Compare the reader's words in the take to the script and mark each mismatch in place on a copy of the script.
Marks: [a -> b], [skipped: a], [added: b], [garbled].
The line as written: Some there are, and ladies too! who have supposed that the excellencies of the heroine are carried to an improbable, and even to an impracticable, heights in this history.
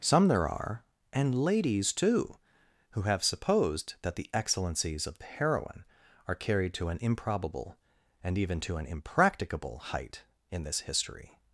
Some there are, and ladies too! who have supposed that the excellencies of the heroine are carried to an improbable, and even to an impracticable, [heights -> height] in this history.